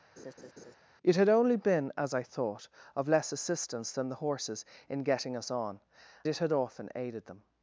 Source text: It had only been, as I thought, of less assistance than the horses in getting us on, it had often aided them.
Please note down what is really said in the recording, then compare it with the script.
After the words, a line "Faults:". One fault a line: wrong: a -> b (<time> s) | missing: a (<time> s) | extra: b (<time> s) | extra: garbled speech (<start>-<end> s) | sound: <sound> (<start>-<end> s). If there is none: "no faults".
It had only been, as I thought, of less assistance than the horses in getting us on, it had often aided them.
Faults:
sound: laugh (0.2-0.7 s)